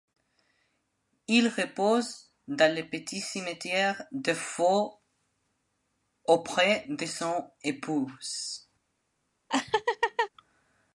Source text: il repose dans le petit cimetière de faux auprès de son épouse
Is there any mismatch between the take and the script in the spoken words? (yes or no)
no